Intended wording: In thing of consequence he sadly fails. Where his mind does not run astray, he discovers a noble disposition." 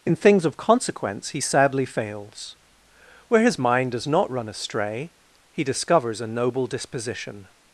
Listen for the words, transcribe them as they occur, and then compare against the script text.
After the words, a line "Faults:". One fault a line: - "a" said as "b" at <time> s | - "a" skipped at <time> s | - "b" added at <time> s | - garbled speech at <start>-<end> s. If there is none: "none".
In things of consequence he sadly fails. Where his mind does not run astray, he discovers a noble disposition."
Faults:
- "thing" said as "things" at 0.1 s